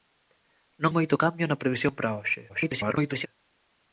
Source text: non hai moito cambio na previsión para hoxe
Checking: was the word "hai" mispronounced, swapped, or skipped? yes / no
yes